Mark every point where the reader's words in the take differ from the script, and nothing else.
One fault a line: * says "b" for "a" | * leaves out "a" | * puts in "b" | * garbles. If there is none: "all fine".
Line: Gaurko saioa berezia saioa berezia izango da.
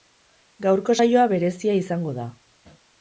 * leaves out "saioa berezia"